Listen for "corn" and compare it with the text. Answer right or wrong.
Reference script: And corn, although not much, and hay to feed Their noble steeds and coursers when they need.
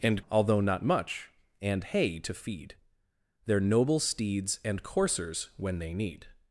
wrong